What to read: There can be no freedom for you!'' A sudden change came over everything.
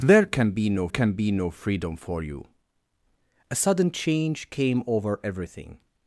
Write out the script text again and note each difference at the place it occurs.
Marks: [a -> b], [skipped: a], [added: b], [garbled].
There can be no [added: can be no] freedom for you!'' A sudden change came over everything.